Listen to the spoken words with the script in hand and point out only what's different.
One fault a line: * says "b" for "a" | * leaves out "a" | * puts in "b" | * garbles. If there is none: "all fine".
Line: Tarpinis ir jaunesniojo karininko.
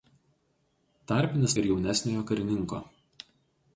all fine